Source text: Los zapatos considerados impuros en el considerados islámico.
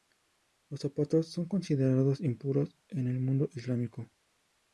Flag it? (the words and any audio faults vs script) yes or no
yes